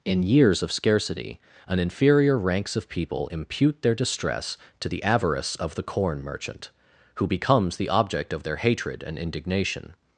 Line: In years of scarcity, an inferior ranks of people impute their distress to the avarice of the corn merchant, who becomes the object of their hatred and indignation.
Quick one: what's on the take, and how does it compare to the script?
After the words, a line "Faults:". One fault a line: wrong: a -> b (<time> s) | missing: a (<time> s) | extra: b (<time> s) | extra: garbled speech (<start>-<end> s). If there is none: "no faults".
In years of scarcity, an inferior ranks of people impute their distress to the avarice of the corn merchant, who becomes the object of their hatred and indignation.
Faults:
no faults